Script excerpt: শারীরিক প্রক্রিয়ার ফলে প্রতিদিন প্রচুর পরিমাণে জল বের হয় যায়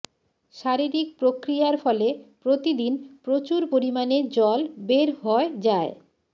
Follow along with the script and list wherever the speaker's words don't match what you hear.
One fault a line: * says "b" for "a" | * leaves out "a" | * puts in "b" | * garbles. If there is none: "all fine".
all fine